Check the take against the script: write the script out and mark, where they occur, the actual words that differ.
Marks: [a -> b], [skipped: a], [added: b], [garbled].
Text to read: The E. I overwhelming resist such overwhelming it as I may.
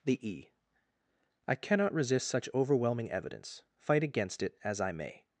The E. I [overwhelming -> cannot] resist such overwhelming [added: evidence fight against] it as I may.